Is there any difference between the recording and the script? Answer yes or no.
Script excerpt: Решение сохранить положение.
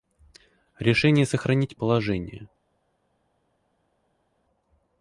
no